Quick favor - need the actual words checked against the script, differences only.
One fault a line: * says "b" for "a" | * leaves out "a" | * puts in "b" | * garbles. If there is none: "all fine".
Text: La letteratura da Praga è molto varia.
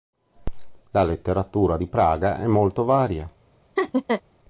* says "di" for "da"